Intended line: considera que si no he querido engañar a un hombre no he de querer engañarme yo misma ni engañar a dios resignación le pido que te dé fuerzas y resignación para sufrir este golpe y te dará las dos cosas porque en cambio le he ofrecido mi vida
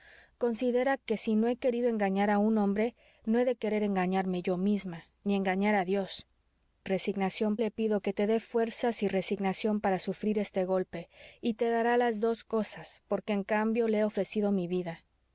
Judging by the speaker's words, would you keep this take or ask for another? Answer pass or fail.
pass